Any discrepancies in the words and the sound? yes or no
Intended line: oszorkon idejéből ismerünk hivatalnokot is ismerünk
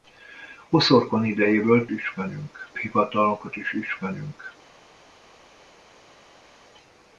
no